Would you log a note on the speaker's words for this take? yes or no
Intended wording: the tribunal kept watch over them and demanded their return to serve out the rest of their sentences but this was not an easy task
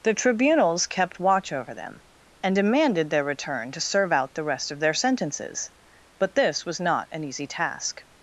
yes